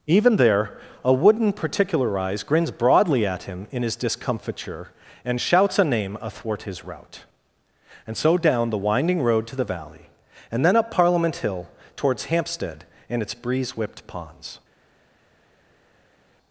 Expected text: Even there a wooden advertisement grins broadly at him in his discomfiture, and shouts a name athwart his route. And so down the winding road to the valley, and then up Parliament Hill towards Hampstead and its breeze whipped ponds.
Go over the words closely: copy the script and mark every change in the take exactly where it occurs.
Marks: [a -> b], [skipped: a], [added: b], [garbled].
Even there a wooden [advertisement -> particularize] grins broadly at him in his discomfiture, and shouts a name athwart his route. And so down the winding road to the valley, and then up Parliament Hill towards Hampstead and its breeze whipped ponds.